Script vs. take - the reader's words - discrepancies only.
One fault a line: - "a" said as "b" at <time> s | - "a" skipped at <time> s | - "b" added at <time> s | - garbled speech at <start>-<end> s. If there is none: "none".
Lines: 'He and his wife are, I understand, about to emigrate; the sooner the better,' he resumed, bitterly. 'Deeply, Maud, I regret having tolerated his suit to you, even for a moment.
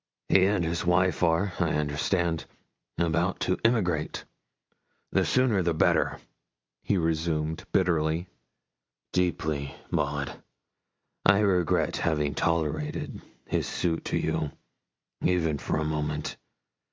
none